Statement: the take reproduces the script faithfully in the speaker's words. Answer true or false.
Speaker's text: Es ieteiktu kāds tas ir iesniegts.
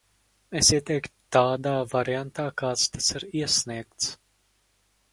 false